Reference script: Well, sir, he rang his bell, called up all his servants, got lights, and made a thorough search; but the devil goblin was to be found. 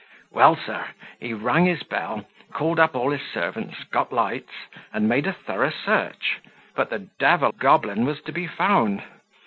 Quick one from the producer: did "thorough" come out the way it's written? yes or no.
yes